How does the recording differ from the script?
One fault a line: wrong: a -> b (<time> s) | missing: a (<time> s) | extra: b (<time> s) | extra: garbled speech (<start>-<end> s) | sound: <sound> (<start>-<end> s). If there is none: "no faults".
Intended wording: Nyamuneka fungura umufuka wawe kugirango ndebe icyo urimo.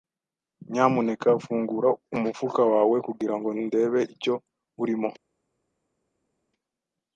no faults